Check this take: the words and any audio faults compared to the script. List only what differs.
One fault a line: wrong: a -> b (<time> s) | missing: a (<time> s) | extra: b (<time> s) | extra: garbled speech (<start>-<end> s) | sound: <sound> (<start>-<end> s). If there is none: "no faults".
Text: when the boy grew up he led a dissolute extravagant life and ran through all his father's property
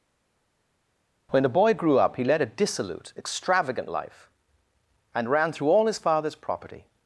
no faults